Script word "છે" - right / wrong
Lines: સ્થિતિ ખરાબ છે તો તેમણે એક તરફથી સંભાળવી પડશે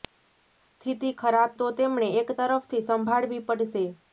wrong